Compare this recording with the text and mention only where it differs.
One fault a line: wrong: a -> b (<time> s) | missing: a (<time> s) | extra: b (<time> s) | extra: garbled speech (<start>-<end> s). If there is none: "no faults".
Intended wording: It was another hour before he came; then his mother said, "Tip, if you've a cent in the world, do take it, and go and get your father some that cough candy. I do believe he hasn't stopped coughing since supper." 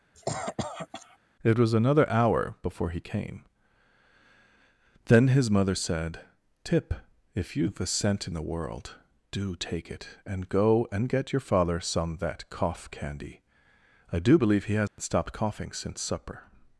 no faults